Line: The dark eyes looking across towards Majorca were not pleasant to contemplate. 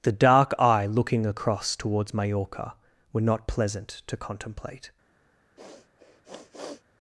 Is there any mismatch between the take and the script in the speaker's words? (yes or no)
yes